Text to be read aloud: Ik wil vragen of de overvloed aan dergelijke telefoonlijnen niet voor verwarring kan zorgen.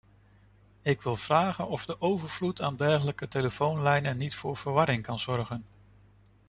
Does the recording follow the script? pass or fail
pass